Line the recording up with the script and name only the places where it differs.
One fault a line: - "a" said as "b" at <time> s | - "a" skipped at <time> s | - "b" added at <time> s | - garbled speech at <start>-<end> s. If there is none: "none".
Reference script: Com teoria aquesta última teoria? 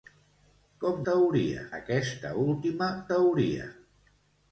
none